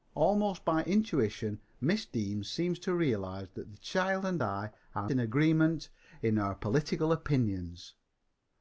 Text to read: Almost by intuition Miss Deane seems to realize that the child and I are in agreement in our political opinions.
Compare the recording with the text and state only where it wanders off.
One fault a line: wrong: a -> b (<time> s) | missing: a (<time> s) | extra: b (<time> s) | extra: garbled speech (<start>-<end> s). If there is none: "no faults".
no faults